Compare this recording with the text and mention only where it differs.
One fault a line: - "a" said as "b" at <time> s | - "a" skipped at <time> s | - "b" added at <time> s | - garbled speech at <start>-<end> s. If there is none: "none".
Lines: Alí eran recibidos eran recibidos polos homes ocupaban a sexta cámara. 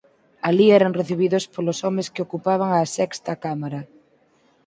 - "eran recibidos" skipped at 1.5 s
- "que" added at 2.1 s